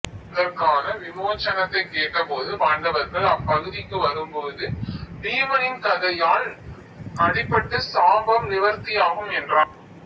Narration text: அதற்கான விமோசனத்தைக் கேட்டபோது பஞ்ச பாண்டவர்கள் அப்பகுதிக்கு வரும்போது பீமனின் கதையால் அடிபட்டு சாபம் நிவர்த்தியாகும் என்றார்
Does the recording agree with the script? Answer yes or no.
no